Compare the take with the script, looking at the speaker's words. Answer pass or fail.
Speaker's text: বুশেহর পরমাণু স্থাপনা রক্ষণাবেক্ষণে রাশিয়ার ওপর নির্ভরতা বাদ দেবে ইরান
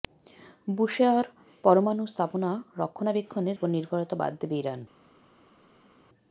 fail